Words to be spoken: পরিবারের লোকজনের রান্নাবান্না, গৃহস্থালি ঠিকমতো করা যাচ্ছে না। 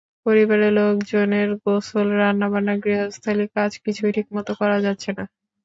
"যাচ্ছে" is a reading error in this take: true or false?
false